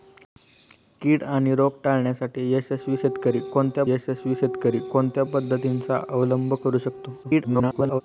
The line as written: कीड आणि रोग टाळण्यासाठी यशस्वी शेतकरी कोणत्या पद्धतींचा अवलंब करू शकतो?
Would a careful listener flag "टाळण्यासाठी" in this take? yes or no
no